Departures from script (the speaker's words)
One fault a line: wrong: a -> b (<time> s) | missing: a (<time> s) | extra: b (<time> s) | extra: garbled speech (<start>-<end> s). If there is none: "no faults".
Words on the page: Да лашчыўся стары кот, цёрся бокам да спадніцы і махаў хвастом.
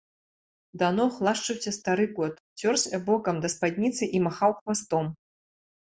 extra: ног (1.0 s)